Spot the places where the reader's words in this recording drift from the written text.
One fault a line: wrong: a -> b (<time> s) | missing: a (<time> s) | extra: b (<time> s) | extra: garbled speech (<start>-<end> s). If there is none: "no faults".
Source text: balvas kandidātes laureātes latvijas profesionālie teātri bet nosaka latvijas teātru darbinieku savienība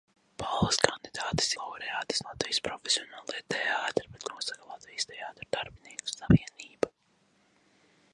no faults